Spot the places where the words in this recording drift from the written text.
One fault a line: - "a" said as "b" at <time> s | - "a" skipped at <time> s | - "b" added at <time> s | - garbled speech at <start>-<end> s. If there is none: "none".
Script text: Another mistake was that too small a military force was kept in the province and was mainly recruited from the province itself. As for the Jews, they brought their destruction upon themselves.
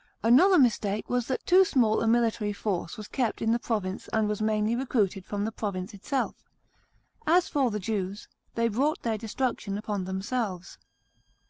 none